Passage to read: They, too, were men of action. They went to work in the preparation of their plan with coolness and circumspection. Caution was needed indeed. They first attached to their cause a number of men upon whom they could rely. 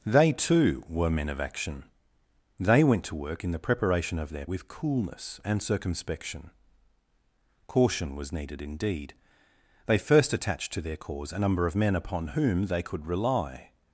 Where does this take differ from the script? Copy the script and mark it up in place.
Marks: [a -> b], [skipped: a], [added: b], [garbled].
They, too, were men of action. They went to work in the preparation of their [skipped: plan] with coolness and circumspection. Caution was needed indeed. They first attached to their cause a number of men upon whom they could rely.